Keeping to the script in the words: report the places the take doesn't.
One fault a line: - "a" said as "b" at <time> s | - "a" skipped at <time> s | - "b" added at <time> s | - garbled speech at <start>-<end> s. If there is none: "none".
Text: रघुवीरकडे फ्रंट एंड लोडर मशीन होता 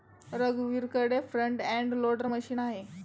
- "होता" said as "आहे" at 2.6 s